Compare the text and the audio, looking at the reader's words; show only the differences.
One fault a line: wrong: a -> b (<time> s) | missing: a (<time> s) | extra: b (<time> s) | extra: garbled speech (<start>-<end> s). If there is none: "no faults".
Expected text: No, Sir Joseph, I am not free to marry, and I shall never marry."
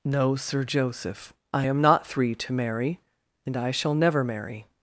wrong: free -> three (2.1 s)